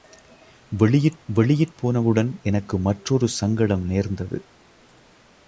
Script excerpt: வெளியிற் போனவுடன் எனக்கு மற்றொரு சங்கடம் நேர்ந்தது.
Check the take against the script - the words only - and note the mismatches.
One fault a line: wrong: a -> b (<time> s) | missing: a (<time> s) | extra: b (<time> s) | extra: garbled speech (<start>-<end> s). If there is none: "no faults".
extra: வெளியிற் (1.3 s)